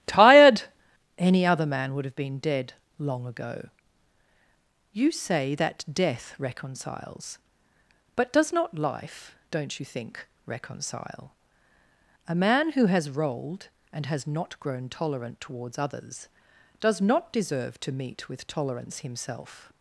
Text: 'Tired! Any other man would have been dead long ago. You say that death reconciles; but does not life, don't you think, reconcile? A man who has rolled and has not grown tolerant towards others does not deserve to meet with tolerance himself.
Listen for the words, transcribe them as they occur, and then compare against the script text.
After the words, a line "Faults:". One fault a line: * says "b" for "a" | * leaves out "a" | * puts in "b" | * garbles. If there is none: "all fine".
'Tired! Any other man would have been dead long ago. You say that death reconciles; but does not life, don't you think, reconcile? A man who has rolled and has not grown tolerant towards others does not deserve to meet with tolerance himself.
Faults:
all fine